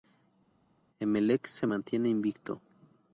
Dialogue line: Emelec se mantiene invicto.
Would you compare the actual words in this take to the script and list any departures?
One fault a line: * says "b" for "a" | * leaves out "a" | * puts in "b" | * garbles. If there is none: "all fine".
all fine